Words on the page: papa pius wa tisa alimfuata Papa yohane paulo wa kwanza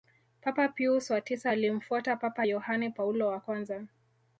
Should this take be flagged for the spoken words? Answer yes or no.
no